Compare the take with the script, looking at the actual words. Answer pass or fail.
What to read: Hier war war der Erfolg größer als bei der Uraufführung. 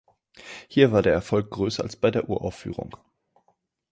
fail